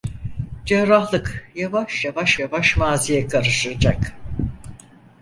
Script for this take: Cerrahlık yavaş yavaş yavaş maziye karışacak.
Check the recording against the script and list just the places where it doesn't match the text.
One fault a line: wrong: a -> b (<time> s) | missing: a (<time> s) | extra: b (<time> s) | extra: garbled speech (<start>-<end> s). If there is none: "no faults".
no faults